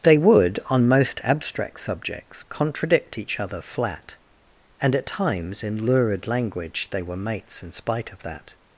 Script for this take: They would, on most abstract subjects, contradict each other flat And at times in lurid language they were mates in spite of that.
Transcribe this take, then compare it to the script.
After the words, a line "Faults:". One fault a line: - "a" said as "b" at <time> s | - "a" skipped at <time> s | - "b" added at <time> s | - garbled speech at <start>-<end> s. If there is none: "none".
They would, on most abstract subjects, contradict each other flat And at times in lurid language they were mates in spite of that.
Faults:
none